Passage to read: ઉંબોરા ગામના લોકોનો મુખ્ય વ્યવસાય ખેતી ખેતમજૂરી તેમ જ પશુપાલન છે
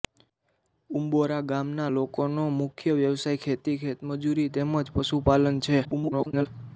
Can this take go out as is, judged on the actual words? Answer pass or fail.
fail